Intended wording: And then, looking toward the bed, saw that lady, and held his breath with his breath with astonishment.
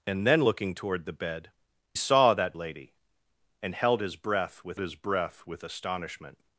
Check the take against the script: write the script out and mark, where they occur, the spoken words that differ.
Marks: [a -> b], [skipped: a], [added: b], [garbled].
And then, looking toward the bed, saw that lady, and held his breath with his breath with astonishment.